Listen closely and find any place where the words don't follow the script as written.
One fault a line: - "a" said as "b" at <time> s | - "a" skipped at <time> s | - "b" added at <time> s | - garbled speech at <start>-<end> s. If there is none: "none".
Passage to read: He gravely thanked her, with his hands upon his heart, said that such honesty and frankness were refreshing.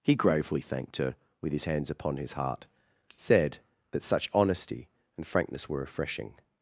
none